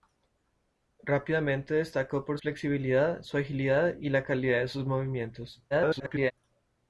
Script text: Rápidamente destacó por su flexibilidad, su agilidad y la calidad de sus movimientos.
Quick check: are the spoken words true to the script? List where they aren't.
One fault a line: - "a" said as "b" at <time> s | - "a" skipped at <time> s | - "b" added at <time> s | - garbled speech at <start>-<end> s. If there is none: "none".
- "su" skipped at 2.4 s
- garbled speech at 5.7-6.3 s